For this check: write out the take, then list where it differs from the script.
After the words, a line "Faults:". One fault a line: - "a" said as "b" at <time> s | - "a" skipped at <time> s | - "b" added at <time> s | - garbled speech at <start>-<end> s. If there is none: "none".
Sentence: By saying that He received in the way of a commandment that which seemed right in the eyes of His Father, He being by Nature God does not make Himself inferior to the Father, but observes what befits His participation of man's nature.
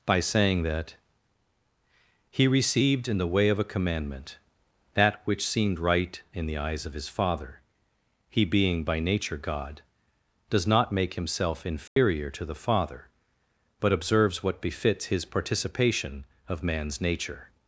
By saying that He received in the way of a commandment that which seemed right in the eyes of His Father, He being by Nature God does not make Himself inferior to the Father, but observes what befits His participation of man's nature.
Faults:
none